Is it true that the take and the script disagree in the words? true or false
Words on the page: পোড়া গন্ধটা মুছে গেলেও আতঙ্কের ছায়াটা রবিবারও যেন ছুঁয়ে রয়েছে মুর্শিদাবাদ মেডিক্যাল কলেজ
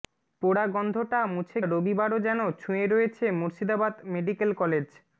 true